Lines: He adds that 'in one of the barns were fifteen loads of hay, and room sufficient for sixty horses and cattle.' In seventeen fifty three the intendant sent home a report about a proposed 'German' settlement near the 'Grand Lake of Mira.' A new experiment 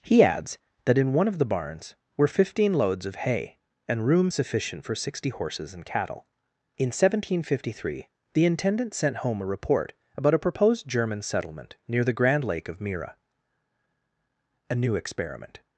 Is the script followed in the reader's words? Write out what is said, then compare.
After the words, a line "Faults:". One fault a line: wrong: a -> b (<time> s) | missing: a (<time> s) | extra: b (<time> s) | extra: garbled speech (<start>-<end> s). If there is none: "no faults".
He adds that 'in one of the barns were fifteen loads of hay, and room sufficient for sixty horses and cattle.' In seventeen fifty three the intendant sent home a report about a proposed 'German' settlement near the 'Grand Lake of Mira.' A new experiment
Faults:
no faults